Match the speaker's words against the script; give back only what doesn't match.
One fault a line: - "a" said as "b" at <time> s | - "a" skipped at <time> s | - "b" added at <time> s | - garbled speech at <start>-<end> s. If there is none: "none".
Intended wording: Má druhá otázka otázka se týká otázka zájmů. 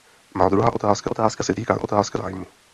none